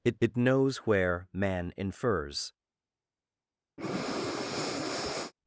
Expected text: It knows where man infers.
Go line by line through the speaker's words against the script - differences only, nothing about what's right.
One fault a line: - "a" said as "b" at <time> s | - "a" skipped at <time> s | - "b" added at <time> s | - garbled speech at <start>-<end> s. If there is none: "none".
- "it" added at 0.2 s